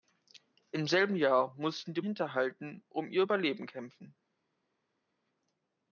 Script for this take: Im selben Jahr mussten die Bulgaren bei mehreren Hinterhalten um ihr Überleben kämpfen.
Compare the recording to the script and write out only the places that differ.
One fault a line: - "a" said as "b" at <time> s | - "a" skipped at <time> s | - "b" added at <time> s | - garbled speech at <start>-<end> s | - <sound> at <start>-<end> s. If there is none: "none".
- "Bulgaren bei mehreren" skipped at 2.0 s